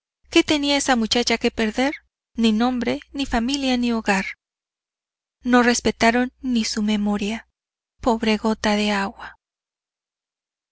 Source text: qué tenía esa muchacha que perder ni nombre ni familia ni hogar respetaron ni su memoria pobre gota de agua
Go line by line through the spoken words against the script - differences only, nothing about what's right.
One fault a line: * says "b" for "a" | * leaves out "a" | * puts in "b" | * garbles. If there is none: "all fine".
* puts in "no"